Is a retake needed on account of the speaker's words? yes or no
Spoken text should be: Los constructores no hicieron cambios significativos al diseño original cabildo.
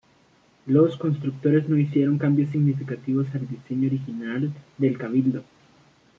yes